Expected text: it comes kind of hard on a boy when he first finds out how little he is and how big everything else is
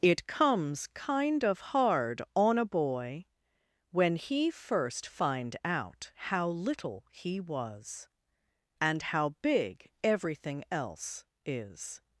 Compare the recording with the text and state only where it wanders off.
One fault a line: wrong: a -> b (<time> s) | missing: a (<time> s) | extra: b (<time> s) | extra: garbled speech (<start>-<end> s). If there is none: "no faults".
wrong: finds -> find (5.1 s)
wrong: is -> was (7.4 s)